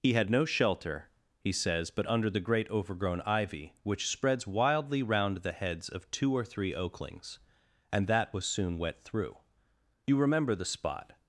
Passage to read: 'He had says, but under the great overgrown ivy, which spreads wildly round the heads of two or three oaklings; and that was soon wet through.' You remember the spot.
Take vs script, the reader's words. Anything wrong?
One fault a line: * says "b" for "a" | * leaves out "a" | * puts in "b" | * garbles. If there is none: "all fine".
* puts in "no shelter he"